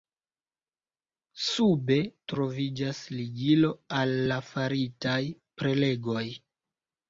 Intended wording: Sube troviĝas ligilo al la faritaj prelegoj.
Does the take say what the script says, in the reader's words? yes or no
yes